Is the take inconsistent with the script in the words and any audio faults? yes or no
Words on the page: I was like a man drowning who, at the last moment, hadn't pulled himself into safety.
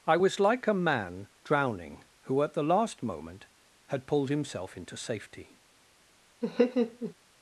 yes